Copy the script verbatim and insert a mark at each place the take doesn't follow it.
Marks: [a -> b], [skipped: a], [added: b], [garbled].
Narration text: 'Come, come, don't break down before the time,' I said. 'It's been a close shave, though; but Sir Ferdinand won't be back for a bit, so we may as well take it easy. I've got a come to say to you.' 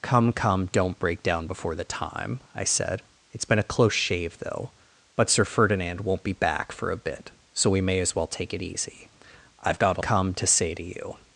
'Come, come, don't break down before the time,' I said. 'It's been a close shave, though; but Sir Ferdinand won't be back for a bit, so we may as well take it easy. I've got a come to say to you.'